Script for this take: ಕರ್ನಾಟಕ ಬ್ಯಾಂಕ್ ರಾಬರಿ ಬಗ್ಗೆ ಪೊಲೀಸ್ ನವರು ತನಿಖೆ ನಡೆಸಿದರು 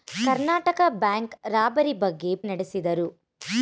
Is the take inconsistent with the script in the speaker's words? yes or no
yes